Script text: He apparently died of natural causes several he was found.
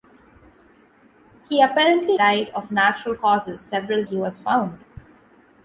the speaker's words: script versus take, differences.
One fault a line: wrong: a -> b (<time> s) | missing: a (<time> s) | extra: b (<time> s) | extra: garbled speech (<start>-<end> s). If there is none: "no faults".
no faults